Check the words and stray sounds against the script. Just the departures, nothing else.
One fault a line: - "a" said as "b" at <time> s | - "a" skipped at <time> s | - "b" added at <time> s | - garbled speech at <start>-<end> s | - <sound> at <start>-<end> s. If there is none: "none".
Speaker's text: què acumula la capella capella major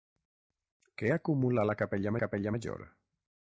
none